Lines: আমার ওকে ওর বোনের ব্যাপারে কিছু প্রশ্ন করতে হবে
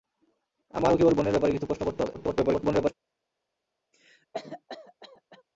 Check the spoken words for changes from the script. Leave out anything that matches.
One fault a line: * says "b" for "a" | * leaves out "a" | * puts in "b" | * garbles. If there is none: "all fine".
* garbles